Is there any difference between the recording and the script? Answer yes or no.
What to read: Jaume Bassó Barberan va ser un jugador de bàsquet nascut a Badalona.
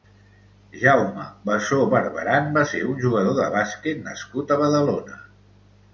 no